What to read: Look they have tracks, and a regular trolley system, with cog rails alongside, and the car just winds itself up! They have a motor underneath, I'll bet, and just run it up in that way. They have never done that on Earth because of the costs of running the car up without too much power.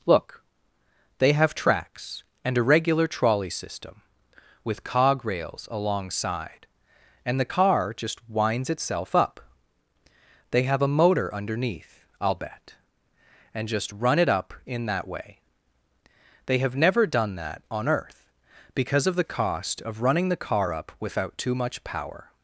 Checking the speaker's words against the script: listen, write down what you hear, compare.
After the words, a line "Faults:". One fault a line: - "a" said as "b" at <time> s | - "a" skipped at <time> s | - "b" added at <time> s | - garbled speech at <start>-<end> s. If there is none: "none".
Look they have tracks, and a regular trolley system, with cog rails alongside, and the car just winds itself up! They have a motor underneath, I'll bet, and just run it up in that way. They have never done that on Earth because of the cost of running the car up without too much power.
Faults:
- "costs" said as "cost" at 19.2 s